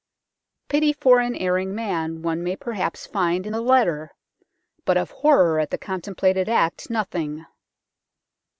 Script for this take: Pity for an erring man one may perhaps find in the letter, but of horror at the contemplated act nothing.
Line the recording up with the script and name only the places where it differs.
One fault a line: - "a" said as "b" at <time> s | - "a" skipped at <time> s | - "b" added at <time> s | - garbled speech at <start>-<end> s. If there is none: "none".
none